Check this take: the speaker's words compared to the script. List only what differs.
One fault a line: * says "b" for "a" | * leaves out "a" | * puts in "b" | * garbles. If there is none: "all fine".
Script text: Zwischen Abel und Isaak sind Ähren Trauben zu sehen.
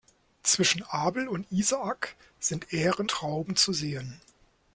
all fine